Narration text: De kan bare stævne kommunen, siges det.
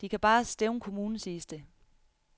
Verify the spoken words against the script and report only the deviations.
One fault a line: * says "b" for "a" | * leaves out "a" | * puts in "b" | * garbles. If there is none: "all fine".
all fine